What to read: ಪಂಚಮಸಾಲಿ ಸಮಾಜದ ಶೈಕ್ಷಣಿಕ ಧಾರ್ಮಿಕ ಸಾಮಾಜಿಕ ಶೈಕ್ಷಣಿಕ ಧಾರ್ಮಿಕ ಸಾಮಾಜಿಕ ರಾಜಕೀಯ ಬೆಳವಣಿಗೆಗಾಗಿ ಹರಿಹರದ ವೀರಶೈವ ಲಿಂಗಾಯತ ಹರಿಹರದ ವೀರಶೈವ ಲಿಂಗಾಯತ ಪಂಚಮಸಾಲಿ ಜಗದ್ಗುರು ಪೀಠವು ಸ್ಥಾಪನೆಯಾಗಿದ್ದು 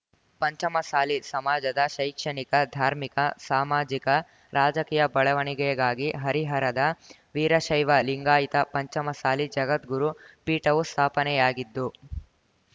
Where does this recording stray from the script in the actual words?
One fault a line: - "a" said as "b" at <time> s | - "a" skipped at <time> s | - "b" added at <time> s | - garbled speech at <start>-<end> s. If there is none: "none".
- "ಶೈಕ್ಷಣಿಕ ಧಾರ್ಮಿಕ ಸಾಮಾಜಿಕ" skipped at 4.1 s
- "ಹರಿಹರದ ವೀರಶೈವ ಲಿಂಗಾಯತ" skipped at 8.7 s